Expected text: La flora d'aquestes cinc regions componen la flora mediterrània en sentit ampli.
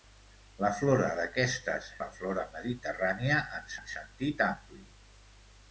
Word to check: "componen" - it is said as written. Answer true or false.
false